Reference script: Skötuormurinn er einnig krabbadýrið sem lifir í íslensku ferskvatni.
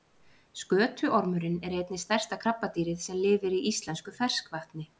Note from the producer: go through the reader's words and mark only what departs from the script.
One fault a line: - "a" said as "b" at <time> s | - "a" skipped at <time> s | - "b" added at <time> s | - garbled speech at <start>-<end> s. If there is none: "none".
- "stærsta" added at 2.0 s